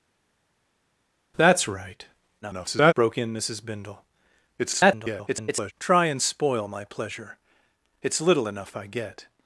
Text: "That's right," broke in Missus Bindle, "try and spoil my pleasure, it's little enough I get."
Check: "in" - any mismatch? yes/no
no